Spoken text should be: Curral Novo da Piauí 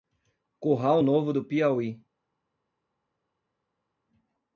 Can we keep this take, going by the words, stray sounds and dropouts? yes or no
no